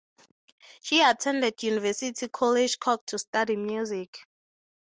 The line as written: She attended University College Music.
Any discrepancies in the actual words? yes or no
yes